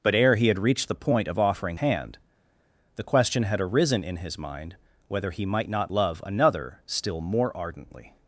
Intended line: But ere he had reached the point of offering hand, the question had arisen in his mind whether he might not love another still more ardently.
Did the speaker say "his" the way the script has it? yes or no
yes